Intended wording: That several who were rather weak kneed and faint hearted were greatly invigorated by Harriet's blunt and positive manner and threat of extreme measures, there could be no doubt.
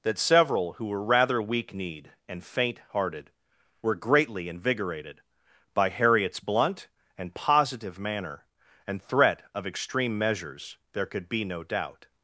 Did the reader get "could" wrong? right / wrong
right